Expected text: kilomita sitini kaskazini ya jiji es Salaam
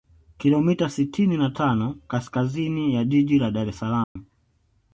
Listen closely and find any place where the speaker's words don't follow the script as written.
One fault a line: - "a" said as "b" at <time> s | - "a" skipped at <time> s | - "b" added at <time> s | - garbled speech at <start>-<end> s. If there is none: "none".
- "na tano" added at 1.4 s
- "la Dar" added at 3.4 s